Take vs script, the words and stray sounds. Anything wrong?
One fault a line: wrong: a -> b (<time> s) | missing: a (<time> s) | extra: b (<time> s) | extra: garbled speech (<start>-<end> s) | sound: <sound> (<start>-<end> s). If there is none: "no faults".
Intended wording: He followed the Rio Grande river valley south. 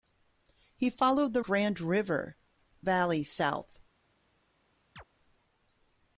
missing: Rio (1.4 s)
sound: chirp (5.0-5.0 s)